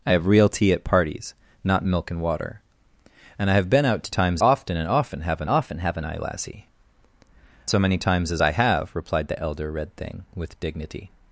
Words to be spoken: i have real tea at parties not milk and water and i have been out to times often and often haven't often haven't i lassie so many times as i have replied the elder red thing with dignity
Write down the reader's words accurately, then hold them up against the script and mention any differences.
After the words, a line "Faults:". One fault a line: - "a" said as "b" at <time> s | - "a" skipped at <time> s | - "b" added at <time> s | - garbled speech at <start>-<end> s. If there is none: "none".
i have real tea at parties not milk and water and i have been out to times often and often haven't often haven't i lassie so many times as i have replied the elder red thing with dignity
Faults:
none